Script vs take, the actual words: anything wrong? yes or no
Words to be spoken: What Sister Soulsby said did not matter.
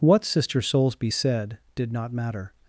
no